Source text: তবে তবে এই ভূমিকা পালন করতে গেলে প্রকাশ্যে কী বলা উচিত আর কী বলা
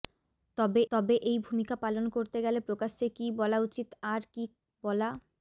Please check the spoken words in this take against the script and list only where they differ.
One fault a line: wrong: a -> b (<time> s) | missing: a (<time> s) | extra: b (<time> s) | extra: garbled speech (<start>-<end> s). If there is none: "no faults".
no faults